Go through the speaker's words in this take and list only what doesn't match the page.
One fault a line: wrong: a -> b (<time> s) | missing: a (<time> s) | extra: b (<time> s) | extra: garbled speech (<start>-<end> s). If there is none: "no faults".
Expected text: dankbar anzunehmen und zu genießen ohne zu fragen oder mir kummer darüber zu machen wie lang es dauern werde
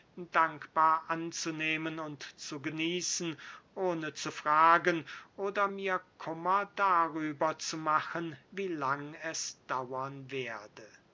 no faults